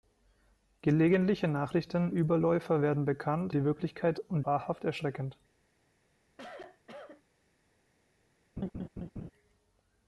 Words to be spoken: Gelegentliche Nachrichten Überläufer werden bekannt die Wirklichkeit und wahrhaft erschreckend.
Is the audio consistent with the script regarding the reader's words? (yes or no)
yes